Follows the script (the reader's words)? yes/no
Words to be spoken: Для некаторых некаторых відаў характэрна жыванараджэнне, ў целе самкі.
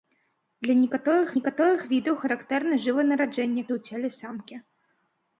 yes